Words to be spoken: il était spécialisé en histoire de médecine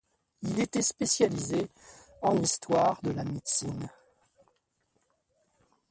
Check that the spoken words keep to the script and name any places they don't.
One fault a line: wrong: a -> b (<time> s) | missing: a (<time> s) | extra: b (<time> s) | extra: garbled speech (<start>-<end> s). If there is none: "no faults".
extra: la (3.1 s)